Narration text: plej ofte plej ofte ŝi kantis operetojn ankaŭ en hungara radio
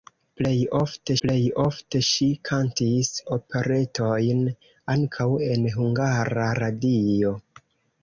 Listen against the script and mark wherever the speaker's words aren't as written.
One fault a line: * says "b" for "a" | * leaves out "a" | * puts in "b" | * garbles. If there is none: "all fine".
all fine